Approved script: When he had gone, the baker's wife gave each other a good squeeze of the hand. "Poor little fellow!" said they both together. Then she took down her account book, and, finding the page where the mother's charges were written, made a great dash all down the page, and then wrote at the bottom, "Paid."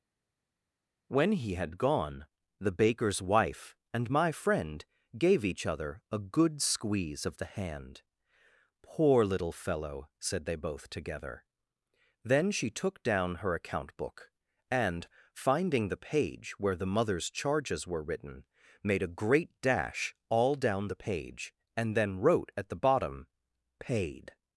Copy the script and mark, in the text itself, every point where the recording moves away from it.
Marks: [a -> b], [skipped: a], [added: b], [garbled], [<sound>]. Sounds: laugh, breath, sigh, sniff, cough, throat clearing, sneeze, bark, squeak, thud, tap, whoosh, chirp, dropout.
When he had gone, the baker's wife [added: and my friend] gave each other a good squeeze of the hand. "Poor little fellow!" said they both together. Then she took down her account book, and, finding the page where the mother's charges were written, made a great dash all down the page, and then wrote at the bottom, "Paid."